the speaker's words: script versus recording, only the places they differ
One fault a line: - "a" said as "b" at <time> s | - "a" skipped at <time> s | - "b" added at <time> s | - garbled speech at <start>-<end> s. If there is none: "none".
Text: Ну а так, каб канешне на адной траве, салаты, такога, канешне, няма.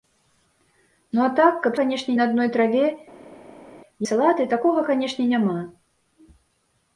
none